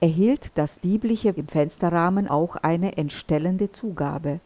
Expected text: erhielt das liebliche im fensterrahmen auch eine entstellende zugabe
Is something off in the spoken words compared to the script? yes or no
no